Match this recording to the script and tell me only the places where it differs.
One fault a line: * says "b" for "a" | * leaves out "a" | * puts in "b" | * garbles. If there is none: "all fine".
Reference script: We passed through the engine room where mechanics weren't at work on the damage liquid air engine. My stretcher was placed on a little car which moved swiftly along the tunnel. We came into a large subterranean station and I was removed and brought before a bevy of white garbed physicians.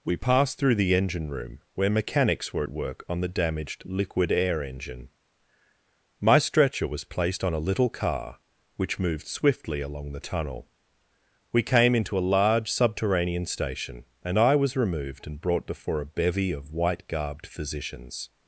* says "were" for "weren't"
* says "damaged" for "damage"